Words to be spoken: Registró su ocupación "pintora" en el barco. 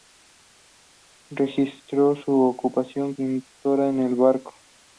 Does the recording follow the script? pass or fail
pass